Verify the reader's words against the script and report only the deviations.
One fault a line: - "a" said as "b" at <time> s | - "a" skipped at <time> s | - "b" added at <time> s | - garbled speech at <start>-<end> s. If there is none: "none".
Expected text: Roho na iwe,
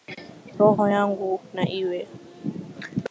- "yangu" added at 0.9 s